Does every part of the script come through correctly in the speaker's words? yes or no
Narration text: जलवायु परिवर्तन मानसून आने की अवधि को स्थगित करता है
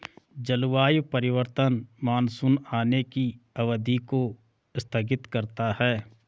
yes